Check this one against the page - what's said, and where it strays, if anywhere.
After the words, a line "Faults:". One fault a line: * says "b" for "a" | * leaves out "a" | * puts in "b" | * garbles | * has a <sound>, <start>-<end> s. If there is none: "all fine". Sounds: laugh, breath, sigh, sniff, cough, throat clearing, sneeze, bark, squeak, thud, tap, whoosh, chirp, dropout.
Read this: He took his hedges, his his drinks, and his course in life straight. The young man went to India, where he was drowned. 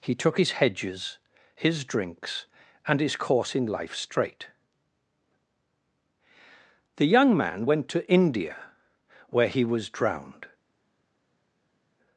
He took his hedges, his drinks, and his course in life straight. The young man went to India, where he was drowned.
Faults:
* leaves out "his"